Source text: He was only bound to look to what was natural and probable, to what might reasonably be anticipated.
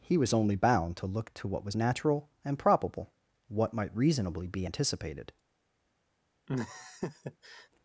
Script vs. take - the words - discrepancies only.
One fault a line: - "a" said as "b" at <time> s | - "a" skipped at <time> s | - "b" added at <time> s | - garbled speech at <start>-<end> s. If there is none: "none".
- "to" skipped at 3.1 s